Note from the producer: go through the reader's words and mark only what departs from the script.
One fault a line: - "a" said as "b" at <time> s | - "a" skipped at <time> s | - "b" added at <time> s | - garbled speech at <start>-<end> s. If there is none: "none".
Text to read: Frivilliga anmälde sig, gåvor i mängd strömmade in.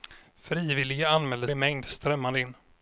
- "sig gåvor" skipped at 1.5 s